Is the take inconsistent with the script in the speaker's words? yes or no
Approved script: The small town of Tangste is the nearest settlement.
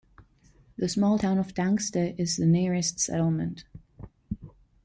no